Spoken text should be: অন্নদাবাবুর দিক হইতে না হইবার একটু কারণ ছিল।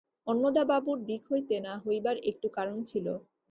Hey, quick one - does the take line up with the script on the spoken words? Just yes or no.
yes